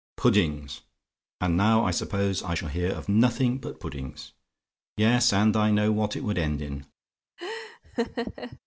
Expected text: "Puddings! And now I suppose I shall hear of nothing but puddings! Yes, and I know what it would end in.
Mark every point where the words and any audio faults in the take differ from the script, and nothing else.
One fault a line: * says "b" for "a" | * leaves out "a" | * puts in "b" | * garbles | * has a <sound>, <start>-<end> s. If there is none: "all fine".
* has a laugh, 7.4-8.6 s